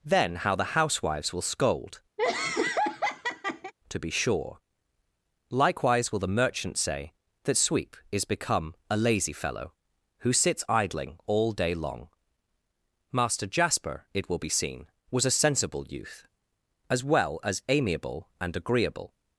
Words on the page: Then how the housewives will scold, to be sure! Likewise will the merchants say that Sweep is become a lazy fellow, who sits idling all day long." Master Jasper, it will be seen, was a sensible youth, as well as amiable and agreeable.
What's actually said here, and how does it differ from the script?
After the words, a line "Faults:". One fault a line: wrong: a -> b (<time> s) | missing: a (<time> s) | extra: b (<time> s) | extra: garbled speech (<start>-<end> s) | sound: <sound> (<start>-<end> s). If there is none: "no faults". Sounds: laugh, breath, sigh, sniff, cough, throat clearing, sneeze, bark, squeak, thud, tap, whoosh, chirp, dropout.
Then how the housewives will scold, to be sure! Likewise will the merchants say that Sweep is become a lazy fellow, who sits idling all day long." Master Jasper, it will be seen, was a sensible youth, as well as amiable and agreeable.
Faults:
sound: laugh (2.2-3.7 s)